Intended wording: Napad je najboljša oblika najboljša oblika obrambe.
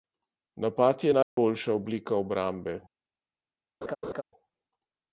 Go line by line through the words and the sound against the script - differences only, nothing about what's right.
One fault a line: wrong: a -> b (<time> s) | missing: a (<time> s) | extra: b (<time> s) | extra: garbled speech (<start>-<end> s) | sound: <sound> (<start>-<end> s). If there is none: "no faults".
sound: dropout (1.2-1.4 s)
missing: najboljša oblika (2.2 s)
sound: laugh (3.8-4.2 s)